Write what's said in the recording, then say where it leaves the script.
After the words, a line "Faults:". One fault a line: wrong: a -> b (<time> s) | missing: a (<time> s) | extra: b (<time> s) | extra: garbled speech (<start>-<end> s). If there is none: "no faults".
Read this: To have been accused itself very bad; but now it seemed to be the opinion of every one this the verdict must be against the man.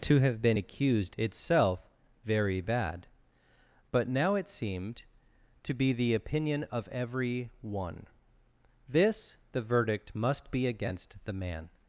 To have been accused itself very bad; but now it seemed to be the opinion of every one this the verdict must be against the man.
Faults:
no faults